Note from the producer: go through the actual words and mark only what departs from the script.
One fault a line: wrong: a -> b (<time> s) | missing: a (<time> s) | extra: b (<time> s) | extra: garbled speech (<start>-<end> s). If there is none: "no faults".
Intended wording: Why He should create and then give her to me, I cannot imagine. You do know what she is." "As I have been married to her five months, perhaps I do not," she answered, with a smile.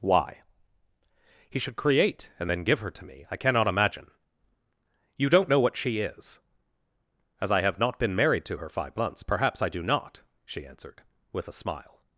wrong: do -> don't (5.3 s)
extra: not (7.8 s)